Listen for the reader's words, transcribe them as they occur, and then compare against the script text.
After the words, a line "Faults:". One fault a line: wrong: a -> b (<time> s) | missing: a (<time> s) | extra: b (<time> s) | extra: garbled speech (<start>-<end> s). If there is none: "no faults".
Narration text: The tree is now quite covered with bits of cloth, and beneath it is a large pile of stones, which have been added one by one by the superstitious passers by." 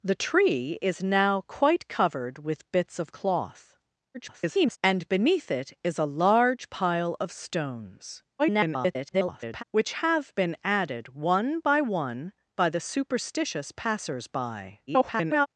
The tree is now quite covered with bits of cloth, [garbled] and beneath it is a large pile of stones, [garbled] which have been added one by one by the superstitious passers by." [garbled]
Faults:
extra: garbled speech (4.1-4.8 s)
extra: garbled speech (8.4-9.6 s)
extra: garbled speech (14.9-15.5 s)